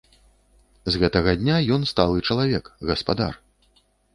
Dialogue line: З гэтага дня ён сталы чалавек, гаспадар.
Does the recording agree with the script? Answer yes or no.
yes